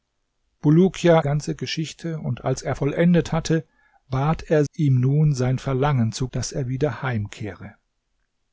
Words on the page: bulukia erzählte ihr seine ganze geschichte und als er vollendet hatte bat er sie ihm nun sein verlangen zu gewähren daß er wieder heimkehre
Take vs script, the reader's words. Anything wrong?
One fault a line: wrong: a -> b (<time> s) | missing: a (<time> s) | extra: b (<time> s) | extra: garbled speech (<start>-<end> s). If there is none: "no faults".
missing: erzählte ihr seine (1.2 s)
missing: sie (4.6 s)
missing: gewähren (6.3 s)